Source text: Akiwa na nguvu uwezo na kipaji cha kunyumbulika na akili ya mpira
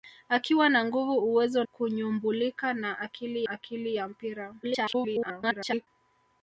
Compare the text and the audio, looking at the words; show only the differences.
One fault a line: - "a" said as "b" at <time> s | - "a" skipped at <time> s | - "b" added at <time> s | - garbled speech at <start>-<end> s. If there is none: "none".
- "na kipaji cha" skipped at 1.6 s
- "akili" added at 3.5 s
- garbled speech at 4.6-5.9 s